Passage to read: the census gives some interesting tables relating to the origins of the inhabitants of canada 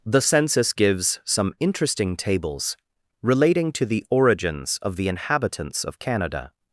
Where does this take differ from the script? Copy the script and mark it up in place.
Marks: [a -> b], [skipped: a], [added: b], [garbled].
the census gives some interesting tables relating to the origins of the inhabitants of canada